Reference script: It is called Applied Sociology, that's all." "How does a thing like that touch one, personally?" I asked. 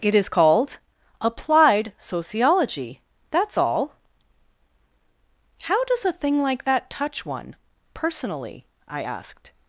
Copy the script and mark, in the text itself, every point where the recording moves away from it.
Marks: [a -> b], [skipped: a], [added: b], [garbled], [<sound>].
It is called Applied Sociology, that's all." "How does a thing like that touch one, personally?" I asked.